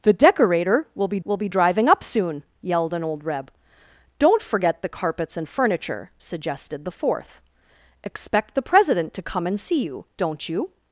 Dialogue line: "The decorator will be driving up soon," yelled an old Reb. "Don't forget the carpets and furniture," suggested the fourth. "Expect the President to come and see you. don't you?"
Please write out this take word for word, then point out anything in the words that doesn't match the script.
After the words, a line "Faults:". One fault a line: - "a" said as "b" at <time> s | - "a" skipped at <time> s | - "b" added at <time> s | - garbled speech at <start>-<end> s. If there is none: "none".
"The decorator will be will be driving up soon," yelled an old Reb. "Don't forget the carpets and furniture," suggested the fourth. "Expect the President to come and see you. don't you?"
Faults:
- "will be" added at 1.2 s